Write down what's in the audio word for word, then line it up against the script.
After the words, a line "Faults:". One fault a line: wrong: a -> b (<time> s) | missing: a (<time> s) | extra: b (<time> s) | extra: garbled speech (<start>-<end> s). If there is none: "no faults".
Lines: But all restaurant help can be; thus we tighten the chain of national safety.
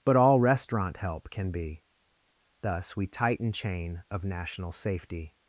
But all restaurant help can be; thus we tighten chain of national safety.
Faults:
missing: the (3.5 s)